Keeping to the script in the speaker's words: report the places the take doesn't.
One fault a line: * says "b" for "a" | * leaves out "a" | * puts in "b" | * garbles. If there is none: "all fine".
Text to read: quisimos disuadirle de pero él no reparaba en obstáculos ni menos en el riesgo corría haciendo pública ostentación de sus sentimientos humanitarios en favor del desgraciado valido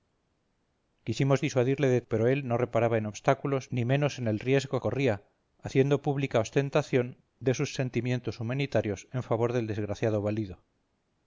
all fine